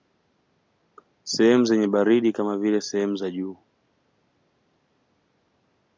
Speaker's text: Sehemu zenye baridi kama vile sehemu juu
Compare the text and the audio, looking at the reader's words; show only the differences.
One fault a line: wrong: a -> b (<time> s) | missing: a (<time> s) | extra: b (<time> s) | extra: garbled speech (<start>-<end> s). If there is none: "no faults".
extra: za (3.1 s)